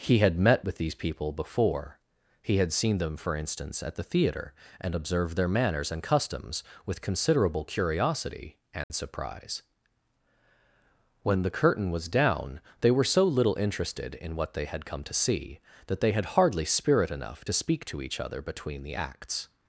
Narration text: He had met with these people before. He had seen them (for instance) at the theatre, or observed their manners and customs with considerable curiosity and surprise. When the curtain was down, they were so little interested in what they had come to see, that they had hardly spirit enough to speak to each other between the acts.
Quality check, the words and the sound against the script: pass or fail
fail